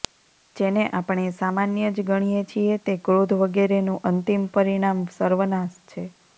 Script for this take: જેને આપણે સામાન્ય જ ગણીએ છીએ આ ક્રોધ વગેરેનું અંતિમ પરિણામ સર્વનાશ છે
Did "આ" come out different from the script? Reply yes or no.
yes